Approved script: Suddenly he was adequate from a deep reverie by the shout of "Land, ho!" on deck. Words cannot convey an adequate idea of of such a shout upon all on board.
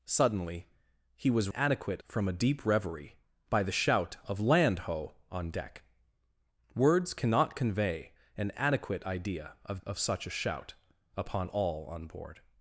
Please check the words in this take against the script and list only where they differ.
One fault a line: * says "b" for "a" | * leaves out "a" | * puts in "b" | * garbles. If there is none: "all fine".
all fine